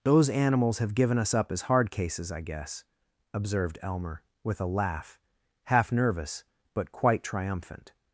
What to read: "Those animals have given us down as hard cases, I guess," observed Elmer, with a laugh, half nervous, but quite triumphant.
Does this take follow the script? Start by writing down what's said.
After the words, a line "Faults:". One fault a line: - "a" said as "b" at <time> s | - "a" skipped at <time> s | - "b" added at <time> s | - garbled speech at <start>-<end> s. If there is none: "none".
"Those animals have given us up as hard cases, I guess," observed Elmer, with a laugh, half nervous, but quite triumphant.
Faults:
- "down" said as "up" at 1.3 s